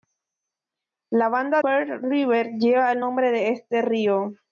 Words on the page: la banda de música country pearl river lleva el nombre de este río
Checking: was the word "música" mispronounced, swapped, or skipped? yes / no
yes